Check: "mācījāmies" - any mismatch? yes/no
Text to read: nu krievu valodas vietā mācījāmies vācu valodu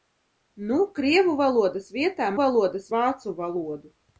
yes